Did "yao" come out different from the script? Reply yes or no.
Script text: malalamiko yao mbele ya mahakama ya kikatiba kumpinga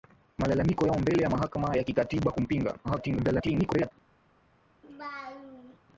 no